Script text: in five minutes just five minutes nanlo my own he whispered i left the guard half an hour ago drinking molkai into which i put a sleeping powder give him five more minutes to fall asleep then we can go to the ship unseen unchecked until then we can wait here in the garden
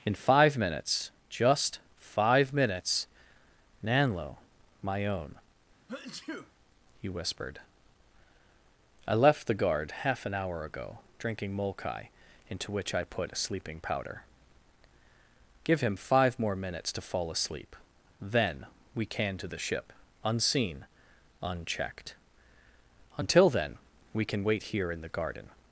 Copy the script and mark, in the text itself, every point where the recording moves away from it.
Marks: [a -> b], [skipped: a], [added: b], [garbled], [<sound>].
in five minutes just five minutes nanlo my own [sneeze] he whispered i left the guard half an hour ago drinking molkai into which i put a sleeping powder give him five more minutes to fall asleep then we can [skipped: go] to the ship unseen unchecked until then we can wait here in the garden